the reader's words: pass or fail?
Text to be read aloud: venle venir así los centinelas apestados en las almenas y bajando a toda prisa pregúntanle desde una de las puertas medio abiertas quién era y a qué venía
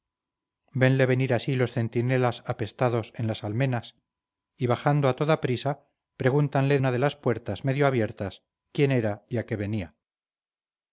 fail